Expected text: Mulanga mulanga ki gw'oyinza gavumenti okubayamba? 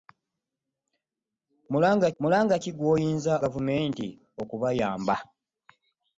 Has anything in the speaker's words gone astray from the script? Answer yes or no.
no